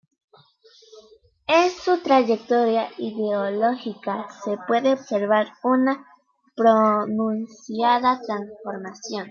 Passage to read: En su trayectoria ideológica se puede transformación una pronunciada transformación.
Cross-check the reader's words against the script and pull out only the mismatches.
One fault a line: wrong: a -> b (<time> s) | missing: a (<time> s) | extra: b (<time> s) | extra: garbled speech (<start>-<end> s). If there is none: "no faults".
wrong: transformación -> observar (4.9 s)